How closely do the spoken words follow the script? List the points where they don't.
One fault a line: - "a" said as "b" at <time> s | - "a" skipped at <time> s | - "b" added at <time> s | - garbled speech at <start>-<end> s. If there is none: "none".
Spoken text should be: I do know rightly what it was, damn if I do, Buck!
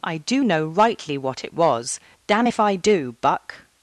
none